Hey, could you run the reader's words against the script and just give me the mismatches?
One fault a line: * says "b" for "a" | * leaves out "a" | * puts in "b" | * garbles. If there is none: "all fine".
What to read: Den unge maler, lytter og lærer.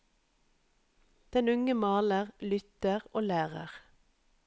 all fine